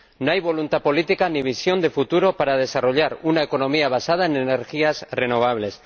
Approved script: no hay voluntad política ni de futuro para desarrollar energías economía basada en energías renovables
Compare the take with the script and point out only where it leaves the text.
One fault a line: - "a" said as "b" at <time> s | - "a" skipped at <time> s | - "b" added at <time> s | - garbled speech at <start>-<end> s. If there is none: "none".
- "visión" added at 1.4 s
- "energías" said as "una" at 3.2 s